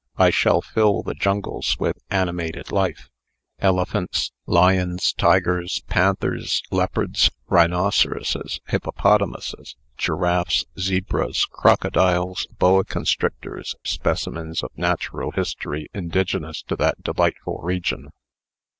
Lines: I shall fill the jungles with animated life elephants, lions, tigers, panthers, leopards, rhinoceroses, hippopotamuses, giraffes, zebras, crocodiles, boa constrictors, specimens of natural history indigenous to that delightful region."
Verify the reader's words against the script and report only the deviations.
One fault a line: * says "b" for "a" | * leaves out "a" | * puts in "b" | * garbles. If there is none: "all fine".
all fine